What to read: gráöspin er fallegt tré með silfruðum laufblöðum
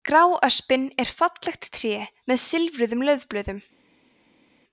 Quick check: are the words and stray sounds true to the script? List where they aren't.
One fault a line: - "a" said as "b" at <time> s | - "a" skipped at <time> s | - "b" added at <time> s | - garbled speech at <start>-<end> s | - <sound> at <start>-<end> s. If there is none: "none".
none